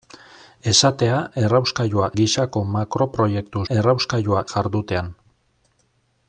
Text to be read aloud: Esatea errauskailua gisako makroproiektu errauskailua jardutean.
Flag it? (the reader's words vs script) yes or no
no